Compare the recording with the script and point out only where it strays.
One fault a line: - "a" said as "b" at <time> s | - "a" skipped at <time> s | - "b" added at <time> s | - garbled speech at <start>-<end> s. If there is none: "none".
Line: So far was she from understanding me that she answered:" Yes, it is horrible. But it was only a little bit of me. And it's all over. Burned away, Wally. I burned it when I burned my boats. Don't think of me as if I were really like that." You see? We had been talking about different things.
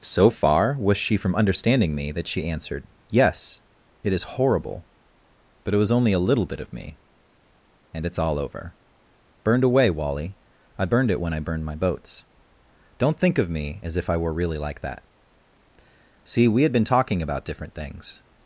- "You" skipped at 15.0 s